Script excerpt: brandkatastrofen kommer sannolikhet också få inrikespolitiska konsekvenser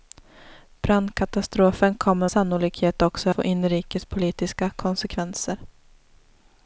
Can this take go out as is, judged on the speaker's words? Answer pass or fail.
pass